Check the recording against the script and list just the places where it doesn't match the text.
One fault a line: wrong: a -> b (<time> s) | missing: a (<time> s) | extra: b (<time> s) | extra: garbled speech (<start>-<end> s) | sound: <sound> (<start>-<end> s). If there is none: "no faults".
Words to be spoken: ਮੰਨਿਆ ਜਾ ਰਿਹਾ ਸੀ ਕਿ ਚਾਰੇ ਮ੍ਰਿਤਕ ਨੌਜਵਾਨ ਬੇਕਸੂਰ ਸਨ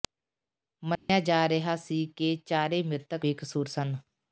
sound: dropout (1.0-1.1 s)
missing: ਨੌਜਵਾਨ (3.2 s)